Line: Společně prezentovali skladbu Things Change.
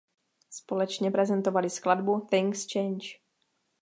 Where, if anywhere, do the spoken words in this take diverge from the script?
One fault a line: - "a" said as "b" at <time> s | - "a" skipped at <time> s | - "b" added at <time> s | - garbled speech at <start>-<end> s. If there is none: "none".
none